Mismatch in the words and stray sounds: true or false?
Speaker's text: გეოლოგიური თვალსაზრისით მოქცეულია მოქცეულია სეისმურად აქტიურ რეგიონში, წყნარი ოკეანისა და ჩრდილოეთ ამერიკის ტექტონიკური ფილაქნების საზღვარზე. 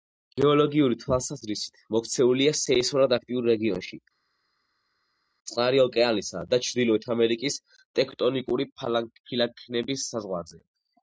true